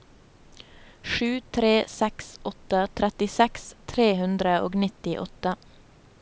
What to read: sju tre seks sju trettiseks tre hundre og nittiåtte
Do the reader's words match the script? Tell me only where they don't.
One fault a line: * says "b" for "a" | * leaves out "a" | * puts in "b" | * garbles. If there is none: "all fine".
* says "åtte" for "sju"